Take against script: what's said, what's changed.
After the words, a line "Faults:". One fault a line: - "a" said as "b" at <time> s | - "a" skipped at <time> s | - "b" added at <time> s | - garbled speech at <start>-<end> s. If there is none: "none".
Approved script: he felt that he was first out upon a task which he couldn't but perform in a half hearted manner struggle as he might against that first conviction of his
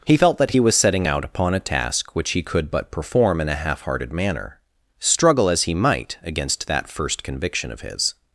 he felt that he was setting out upon a task which he could but perform in a half hearted manner struggle as he might against that first conviction of his
Faults:
- "first" said as "setting" at 0.8 s
- "couldn't" said as "could" at 2.4 s